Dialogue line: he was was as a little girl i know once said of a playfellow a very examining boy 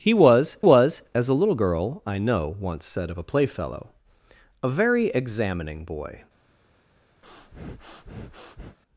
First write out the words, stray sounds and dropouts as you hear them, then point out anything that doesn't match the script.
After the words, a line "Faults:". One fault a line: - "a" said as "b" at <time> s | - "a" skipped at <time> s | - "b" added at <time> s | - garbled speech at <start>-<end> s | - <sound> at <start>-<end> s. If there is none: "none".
he was was as a little girl i know once said of a playfellow a very examining boy
Faults:
- breath at 7.2-8.8 s